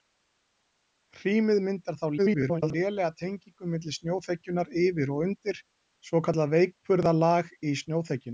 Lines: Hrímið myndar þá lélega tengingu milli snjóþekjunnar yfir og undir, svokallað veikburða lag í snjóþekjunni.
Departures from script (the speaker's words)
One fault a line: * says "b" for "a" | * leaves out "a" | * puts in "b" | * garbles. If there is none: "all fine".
* garbles